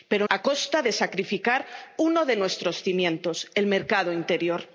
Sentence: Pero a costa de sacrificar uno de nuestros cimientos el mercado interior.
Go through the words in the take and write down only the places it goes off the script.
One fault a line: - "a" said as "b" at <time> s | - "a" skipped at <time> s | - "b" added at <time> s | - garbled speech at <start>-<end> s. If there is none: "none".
none